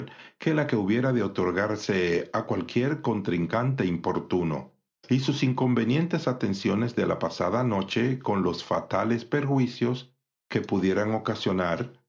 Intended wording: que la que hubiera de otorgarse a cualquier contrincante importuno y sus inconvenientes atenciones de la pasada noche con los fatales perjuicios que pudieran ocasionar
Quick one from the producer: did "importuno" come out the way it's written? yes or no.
yes